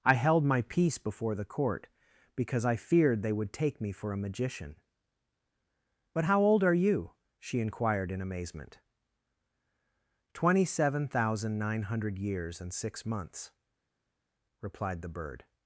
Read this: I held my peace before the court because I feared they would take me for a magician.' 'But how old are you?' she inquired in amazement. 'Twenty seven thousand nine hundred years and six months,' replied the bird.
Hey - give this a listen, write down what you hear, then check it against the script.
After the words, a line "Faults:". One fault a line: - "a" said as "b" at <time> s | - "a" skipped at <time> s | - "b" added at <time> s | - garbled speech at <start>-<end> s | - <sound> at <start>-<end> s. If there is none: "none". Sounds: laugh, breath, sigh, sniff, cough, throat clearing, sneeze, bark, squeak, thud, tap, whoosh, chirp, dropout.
I held my peace before the court because I feared they would take me for a magician.' 'But how old are you?' she inquired in amazement. 'Twenty seven thousand nine hundred years and six months,' replied the bird.
Faults:
none